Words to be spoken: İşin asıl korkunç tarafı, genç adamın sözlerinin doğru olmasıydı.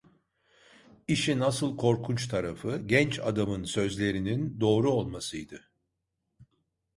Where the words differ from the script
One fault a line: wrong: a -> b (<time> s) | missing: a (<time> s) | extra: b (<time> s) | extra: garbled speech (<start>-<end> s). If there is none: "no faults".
no faults